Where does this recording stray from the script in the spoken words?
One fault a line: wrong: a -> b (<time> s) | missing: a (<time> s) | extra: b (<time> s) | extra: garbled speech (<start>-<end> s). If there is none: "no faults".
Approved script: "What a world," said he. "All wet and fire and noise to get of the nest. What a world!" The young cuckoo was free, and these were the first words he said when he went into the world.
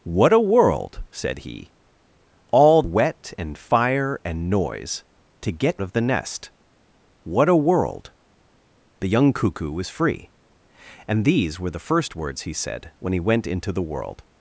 no faults